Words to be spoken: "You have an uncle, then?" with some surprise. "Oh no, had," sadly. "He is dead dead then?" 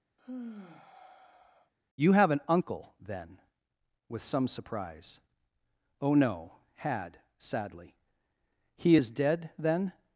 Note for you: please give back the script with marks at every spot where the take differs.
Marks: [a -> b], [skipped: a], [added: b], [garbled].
"You have an uncle, then?" with some surprise. "Oh no, had," sadly. "He is dead [skipped: dead] then?"